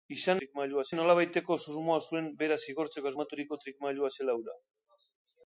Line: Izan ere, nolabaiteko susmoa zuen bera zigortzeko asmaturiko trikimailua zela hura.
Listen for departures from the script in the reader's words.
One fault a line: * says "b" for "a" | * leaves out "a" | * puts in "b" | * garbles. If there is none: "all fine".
* says "trikimailua" for "ere"